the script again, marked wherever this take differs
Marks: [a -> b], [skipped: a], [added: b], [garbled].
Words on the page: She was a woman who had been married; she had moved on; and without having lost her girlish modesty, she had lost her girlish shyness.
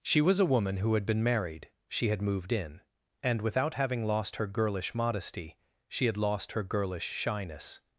She was a woman who had been married; she had moved [on; -> in] and without having lost her girlish modesty, she had lost her girlish shyness.